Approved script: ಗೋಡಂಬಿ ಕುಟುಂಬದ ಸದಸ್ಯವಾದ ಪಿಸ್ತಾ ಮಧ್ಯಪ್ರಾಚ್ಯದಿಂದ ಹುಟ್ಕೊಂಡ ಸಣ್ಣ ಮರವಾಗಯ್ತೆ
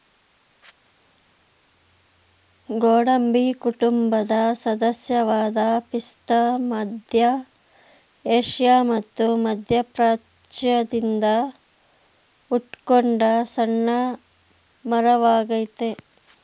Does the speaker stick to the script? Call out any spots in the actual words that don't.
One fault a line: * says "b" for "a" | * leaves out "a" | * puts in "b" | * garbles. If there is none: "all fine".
* puts in "ಮಧ್ಯ ಏಷ್ಯಾ ಮತ್ತು"